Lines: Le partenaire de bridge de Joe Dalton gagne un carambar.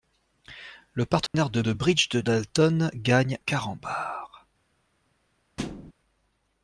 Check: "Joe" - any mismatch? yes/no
yes